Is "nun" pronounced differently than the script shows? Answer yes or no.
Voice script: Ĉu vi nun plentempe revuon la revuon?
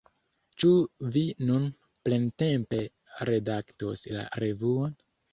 no